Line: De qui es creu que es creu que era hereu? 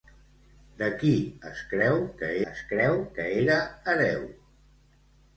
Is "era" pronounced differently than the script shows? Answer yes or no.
no